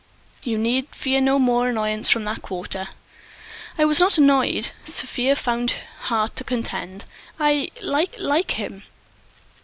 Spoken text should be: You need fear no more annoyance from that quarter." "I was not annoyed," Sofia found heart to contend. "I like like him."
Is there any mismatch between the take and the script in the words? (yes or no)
no